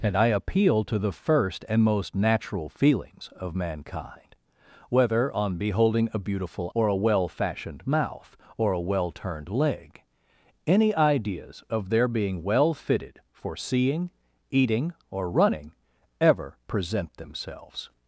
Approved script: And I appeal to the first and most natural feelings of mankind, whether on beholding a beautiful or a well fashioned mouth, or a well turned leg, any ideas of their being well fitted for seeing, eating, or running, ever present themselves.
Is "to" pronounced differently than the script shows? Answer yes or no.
no